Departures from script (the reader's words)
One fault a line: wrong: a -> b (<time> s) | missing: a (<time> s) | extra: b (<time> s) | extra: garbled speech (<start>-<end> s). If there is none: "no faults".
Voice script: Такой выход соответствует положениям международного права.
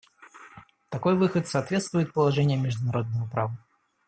no faults